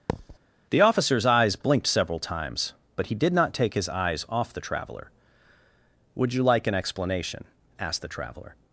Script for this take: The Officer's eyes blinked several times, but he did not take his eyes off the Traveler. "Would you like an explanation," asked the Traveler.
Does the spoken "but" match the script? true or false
true